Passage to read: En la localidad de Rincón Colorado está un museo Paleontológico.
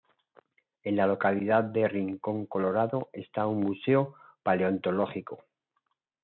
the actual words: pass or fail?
pass